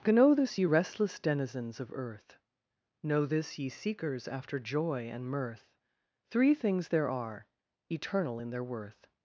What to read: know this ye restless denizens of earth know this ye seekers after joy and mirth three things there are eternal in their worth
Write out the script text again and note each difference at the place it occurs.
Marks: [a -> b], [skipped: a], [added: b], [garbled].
know this ye restless denizens of earth know this ye seekers after joy and mirth three things there are eternal in their worth